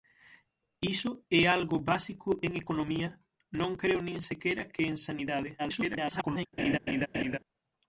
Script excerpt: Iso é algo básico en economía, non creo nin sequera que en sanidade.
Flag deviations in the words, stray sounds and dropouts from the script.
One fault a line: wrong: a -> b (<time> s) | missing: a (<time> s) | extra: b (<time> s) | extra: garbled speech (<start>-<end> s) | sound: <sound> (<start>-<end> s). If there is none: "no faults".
extra: garbled speech (5.6-6.5 s)
sound: laugh (6.6-7.4 s)